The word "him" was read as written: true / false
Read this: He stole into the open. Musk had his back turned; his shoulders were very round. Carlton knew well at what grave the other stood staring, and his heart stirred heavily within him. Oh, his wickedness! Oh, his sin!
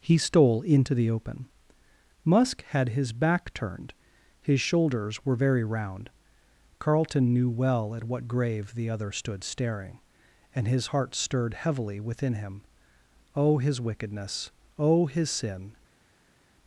true